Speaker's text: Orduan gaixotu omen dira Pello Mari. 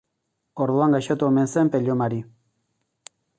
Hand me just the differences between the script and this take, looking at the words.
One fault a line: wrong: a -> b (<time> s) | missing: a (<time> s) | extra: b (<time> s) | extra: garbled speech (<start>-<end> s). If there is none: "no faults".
wrong: dira -> zen (1.6 s)